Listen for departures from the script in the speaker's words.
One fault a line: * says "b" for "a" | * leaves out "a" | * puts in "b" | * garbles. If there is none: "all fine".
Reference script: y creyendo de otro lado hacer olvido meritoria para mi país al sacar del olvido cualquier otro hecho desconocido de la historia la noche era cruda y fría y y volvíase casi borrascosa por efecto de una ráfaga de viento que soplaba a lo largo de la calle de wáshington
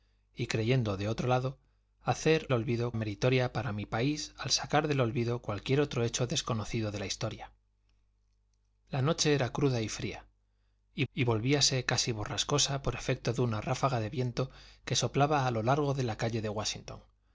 all fine